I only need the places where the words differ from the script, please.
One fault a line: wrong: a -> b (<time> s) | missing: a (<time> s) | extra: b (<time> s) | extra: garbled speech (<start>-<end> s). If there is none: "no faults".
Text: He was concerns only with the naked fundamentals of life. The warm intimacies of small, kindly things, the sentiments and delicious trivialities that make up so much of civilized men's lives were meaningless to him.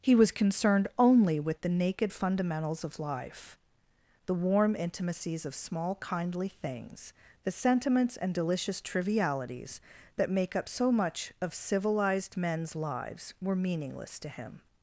wrong: concerns -> concerned (0.3 s)